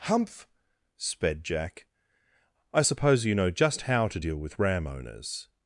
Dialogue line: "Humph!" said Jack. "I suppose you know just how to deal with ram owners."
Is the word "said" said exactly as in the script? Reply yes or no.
no